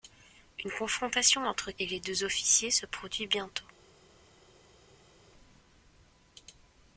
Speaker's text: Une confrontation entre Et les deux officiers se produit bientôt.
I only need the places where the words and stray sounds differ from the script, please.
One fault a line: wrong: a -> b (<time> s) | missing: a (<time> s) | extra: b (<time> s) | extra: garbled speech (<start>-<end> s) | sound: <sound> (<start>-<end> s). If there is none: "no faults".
no faults